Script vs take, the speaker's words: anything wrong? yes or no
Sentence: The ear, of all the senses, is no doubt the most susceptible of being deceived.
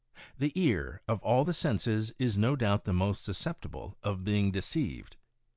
no